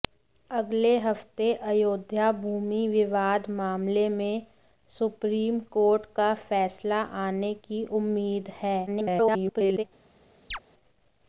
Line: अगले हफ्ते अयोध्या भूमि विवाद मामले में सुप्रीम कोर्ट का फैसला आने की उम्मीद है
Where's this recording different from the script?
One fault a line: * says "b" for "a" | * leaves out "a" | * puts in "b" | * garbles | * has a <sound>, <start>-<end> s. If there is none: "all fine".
* garbles
* has a chirp, 10.5-10.6 s